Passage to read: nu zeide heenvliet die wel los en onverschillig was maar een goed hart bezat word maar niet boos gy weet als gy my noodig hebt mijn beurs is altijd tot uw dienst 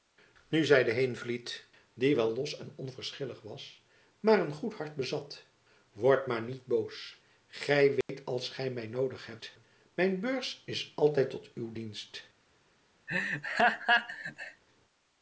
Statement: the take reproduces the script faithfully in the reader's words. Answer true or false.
true